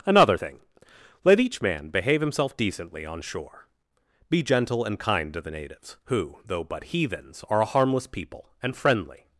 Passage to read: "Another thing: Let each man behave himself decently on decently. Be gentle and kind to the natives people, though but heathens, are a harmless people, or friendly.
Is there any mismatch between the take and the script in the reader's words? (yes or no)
yes